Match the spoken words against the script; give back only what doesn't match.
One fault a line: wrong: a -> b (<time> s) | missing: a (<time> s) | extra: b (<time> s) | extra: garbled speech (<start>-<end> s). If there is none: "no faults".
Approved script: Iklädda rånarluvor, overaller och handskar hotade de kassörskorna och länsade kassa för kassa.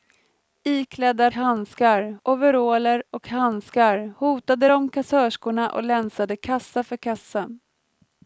wrong: rånarluvor -> handskar (1.3 s)